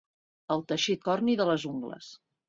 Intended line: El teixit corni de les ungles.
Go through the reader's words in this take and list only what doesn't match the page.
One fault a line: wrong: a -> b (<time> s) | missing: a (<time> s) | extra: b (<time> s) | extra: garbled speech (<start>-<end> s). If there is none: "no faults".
no faults